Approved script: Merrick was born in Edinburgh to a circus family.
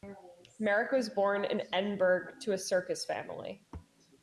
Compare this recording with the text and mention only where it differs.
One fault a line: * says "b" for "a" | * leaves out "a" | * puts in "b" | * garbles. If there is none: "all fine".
all fine